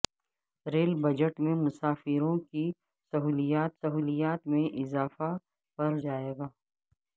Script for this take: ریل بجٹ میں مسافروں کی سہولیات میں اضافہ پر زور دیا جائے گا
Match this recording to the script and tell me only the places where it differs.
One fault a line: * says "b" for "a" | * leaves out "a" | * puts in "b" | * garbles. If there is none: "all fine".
* puts in "سہولیات"
* leaves out "زور دیا"